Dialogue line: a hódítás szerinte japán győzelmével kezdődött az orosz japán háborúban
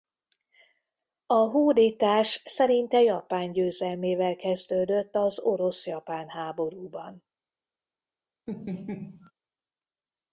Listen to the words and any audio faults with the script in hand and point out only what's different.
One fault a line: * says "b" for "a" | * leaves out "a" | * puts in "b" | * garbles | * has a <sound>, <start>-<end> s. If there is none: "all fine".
* has a laugh, 8.5-9.3 s